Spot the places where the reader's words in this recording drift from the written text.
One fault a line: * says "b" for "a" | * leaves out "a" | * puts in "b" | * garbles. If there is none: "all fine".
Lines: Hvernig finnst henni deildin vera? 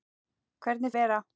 * leaves out "finnst henni deildin"